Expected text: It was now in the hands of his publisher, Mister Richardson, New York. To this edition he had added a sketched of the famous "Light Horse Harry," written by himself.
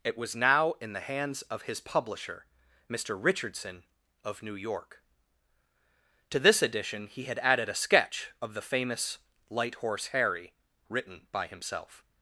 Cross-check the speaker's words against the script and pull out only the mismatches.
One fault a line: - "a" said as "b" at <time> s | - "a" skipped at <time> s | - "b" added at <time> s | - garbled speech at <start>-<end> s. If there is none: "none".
- "of" added at 4.2 s
- "sketched" said as "sketch" at 7.8 s